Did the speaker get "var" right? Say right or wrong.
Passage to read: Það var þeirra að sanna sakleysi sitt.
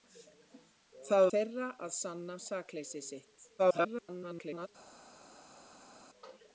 wrong